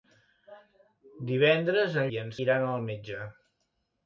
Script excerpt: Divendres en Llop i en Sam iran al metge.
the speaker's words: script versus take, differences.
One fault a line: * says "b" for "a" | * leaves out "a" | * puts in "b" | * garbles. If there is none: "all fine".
* leaves out "Llop"
* leaves out "Sam"